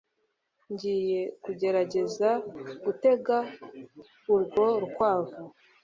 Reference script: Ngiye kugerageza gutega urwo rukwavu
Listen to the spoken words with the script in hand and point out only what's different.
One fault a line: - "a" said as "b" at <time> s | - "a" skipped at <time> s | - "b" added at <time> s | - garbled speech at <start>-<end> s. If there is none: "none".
none